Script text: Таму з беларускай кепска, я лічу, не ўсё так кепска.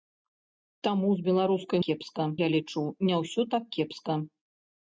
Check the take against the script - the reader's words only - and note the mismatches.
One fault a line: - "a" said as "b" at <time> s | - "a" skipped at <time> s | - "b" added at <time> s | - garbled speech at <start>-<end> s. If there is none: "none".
none